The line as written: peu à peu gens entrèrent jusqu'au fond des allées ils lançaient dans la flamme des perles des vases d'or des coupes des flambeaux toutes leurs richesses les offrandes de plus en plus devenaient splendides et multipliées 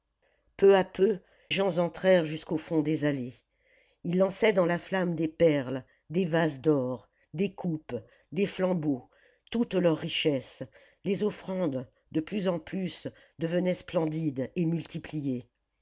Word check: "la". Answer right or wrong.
right